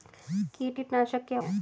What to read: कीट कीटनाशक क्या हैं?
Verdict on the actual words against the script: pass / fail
pass